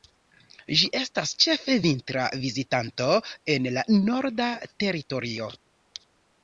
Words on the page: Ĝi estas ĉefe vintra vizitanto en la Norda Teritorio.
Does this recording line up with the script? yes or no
yes